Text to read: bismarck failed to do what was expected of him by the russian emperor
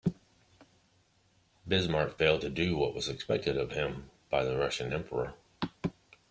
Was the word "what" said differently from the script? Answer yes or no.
no